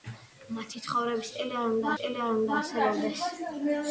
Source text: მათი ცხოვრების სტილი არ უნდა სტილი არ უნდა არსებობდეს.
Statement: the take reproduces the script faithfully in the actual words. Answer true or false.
true